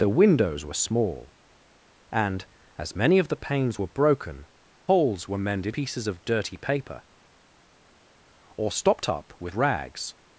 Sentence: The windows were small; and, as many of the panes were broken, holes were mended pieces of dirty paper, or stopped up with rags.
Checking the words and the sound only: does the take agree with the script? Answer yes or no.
yes